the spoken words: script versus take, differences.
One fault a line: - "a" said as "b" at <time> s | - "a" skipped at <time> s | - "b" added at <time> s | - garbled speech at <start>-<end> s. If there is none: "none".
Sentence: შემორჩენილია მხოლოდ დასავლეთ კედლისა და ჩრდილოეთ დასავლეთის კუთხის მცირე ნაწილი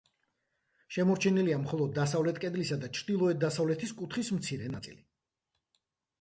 none